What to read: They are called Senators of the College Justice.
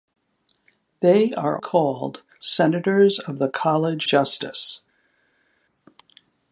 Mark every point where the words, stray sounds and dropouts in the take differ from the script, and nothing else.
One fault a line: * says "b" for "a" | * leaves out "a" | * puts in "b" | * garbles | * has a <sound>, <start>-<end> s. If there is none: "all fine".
all fine